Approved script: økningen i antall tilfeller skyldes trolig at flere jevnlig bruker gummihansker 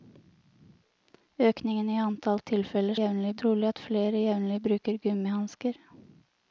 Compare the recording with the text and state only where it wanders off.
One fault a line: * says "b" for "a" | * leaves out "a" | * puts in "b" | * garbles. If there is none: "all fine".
* says "jevnlig" for "skyldes"